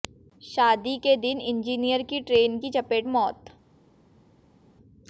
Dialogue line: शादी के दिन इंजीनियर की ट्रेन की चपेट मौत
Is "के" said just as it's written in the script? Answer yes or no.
yes